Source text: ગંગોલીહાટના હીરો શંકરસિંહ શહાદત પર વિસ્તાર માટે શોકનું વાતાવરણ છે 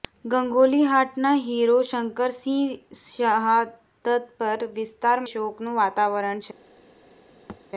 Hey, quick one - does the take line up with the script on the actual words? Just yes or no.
no